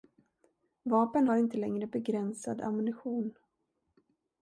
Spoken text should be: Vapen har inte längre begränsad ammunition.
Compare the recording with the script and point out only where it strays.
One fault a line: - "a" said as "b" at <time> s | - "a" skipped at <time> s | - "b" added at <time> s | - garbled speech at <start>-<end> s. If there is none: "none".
none